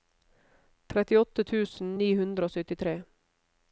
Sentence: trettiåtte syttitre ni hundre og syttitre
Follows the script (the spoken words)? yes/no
no